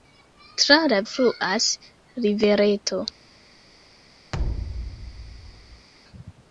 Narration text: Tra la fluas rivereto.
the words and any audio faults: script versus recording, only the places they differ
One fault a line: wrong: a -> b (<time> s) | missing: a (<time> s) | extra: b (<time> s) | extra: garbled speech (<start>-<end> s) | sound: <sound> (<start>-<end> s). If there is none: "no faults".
sound: thud (4.3-5.9 s)